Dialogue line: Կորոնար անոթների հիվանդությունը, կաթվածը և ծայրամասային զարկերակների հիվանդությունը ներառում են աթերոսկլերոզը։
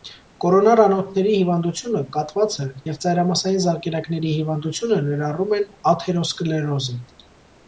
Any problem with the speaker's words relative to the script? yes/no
no